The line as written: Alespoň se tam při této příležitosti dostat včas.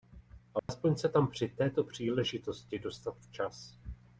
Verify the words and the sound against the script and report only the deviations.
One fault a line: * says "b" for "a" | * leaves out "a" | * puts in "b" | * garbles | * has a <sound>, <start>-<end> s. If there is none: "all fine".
* has a dropout, 0.6-0.7 s